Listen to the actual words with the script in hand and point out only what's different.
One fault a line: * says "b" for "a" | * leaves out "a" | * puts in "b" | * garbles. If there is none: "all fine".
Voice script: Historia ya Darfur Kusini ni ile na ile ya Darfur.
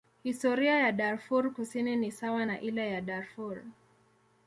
* says "sawa" for "ile"